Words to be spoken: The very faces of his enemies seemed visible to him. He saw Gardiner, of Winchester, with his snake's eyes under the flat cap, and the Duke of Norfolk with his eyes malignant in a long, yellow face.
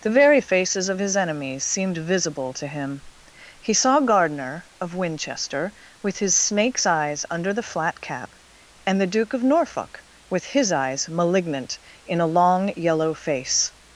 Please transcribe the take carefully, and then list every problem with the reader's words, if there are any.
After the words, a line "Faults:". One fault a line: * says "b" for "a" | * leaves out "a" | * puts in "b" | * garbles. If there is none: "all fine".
The very faces of his enemies seemed visible to him. He saw Gardiner, of Winchester, with his snake's eyes under the flat cap, and the Duke of Norfolk with his eyes malignant in a long, yellow face.
Faults:
all fine